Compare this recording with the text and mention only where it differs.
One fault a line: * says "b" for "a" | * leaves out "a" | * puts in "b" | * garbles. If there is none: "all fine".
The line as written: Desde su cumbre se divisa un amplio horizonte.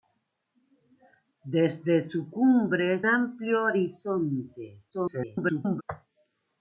* leaves out "se divisa un"
* garbles